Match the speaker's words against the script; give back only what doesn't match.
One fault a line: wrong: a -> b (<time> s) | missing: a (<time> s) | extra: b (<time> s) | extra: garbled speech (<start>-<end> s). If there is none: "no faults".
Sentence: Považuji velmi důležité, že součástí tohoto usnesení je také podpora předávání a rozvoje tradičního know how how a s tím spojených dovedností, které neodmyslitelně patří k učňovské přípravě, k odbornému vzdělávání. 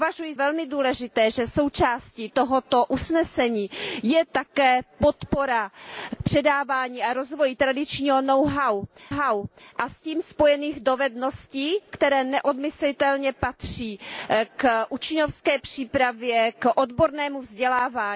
no faults